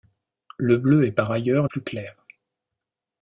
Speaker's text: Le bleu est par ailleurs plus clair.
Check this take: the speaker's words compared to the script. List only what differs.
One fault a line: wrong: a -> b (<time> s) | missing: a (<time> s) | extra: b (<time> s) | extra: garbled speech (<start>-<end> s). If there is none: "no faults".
no faults